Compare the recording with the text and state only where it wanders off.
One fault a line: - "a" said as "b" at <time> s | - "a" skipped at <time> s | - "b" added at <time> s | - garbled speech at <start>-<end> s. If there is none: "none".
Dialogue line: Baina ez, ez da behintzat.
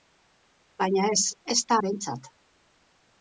none